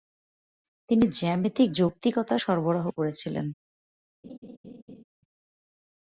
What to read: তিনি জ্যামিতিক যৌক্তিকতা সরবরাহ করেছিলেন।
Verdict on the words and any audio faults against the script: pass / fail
fail